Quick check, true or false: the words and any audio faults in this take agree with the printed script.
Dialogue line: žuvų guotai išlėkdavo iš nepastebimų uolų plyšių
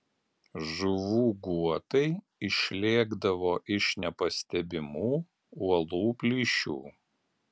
true